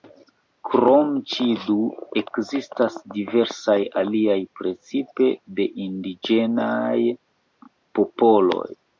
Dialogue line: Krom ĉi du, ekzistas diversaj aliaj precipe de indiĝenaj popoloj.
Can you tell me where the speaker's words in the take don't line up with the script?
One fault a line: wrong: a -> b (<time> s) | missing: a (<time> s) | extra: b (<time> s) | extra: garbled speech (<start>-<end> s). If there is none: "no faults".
no faults